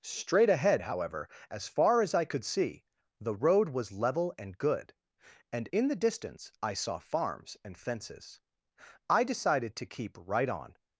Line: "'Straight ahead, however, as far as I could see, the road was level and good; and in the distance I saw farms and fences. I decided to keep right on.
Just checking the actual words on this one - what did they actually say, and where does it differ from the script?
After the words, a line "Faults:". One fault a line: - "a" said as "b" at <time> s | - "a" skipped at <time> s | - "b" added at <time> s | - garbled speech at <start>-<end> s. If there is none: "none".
"'Straight ahead, however, as far as I could see, the road was level and good; and in the distance I saw farms and fences. I decided to keep right on.
Faults:
none